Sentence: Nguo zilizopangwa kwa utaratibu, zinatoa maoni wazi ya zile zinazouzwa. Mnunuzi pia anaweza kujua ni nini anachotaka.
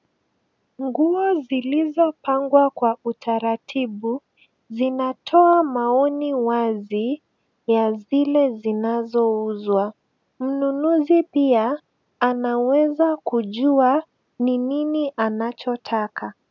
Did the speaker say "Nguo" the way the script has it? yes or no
yes